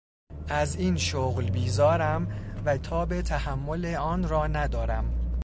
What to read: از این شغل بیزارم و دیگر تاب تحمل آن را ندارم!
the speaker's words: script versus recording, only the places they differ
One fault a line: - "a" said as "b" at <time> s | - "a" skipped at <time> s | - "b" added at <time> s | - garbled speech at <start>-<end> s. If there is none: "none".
- "دیگر" skipped at 2.8 s